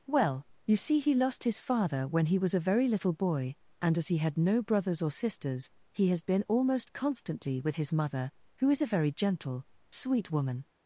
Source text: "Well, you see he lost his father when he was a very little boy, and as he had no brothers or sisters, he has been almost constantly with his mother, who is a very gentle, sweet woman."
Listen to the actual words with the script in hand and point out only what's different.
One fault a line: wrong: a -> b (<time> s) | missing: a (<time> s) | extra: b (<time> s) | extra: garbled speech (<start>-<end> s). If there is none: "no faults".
no faults